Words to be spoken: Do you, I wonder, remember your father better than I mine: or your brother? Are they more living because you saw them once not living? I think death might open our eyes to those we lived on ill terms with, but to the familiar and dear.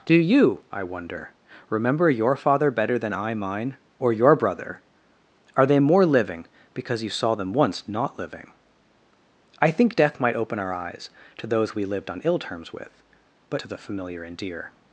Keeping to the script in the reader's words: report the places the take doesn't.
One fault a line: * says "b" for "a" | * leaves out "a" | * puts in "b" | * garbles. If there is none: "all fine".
all fine